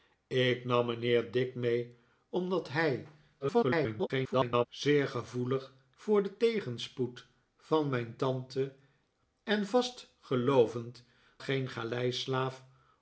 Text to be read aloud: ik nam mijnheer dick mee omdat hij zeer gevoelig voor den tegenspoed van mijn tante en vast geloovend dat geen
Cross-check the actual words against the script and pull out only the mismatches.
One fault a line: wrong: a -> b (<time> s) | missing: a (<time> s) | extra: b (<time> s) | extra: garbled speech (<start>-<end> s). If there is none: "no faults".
extra: garbled speech (3.4-4.7 s)
missing: dat (11.0 s)